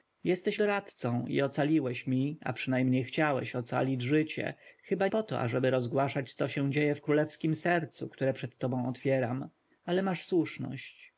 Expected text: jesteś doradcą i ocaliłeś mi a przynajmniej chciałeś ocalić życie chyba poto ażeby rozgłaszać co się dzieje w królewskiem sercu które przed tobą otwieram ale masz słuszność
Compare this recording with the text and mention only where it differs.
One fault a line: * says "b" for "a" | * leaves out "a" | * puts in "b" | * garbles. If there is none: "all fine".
all fine